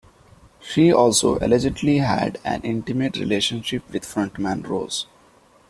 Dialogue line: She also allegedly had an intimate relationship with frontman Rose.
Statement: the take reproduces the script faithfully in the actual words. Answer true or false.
true